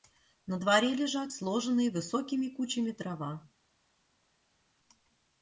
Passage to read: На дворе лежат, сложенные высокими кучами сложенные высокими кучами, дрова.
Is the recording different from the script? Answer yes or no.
yes